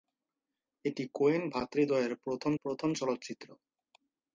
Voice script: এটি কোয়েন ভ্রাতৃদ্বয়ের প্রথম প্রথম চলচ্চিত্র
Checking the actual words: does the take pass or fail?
pass